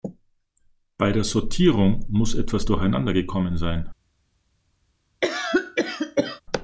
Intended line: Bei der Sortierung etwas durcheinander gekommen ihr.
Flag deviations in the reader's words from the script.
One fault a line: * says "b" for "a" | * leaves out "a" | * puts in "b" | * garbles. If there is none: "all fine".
* puts in "muss"
* says "sein" for "ihr"